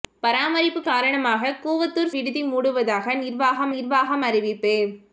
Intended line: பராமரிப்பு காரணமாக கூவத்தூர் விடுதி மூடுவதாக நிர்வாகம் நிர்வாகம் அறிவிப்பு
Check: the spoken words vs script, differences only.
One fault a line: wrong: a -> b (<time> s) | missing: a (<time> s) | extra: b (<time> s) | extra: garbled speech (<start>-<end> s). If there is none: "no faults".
no faults